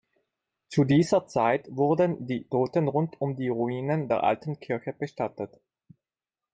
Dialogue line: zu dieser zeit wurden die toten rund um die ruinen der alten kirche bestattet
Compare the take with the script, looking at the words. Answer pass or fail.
pass